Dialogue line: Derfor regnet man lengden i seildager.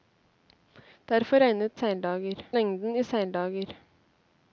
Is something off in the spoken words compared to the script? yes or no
yes